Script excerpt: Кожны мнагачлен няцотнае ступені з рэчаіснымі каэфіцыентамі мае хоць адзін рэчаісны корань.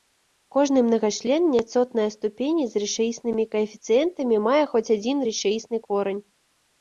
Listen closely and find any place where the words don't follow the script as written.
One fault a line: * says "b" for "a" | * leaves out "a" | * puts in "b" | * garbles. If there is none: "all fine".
all fine